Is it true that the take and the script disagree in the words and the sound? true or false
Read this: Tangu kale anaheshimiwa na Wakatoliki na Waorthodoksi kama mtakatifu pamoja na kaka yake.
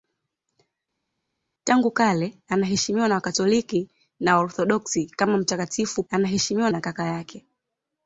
true